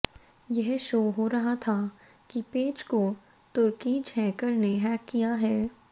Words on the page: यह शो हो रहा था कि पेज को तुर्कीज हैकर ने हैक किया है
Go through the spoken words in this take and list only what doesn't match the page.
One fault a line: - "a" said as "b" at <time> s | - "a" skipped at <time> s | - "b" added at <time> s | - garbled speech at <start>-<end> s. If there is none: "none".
none